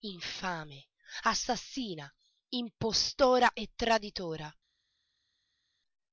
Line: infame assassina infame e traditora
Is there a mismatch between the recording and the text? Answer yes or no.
yes